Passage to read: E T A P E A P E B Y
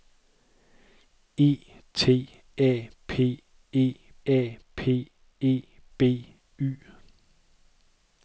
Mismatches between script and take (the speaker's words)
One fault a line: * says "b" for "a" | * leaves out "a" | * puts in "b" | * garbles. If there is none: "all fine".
all fine